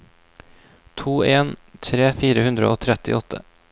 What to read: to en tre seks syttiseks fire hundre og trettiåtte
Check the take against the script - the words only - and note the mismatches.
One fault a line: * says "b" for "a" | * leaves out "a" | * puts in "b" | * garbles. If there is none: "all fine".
* leaves out "seks syttiseks"